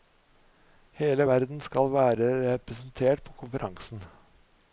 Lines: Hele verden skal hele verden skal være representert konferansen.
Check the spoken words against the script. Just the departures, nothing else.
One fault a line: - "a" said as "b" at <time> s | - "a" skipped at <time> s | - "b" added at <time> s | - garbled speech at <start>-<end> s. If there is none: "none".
- "hele verden skal" skipped at 1.9 s
- "på" added at 3.2 s